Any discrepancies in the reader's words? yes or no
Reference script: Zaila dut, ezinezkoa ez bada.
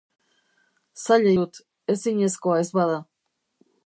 no